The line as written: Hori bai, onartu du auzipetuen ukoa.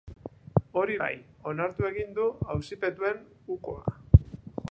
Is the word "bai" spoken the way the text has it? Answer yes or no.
yes